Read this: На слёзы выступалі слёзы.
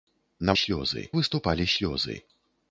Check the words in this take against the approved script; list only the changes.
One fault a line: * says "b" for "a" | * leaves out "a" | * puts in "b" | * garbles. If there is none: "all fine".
all fine